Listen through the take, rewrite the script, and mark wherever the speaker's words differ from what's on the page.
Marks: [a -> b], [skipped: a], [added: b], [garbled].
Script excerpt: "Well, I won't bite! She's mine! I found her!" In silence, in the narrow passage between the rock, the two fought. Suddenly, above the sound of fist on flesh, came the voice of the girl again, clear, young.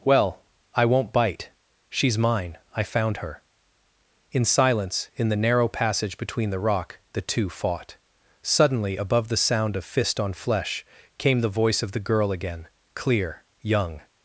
"Well, I won't bite! She's mine! I found her!" In silence, in the narrow passage between the rock, the two fought. Suddenly, above the sound of fist on flesh, came the voice of the girl again, clear, young.